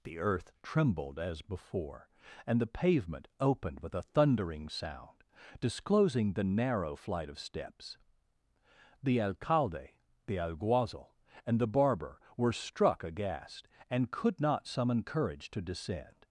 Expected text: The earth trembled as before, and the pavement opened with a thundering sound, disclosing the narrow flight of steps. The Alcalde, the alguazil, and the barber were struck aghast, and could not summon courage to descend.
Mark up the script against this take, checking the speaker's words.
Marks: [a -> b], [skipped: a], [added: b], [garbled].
The earth trembled as before, and the pavement opened with a thundering sound, disclosing the narrow flight of steps. The Alcalde, the alguazil, and the barber were struck aghast, and could not summon courage to descend.